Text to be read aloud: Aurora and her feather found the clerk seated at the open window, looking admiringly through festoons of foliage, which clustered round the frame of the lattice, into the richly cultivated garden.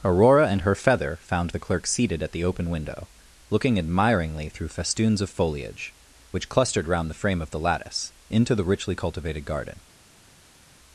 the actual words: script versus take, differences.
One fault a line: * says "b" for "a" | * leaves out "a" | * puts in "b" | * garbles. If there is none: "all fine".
all fine